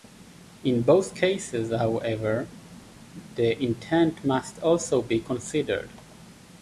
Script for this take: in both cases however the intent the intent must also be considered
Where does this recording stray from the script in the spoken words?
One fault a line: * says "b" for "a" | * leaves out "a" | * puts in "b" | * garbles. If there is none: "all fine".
* leaves out "the intent"